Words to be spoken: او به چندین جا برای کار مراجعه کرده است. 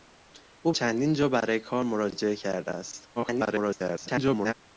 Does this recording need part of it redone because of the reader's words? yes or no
yes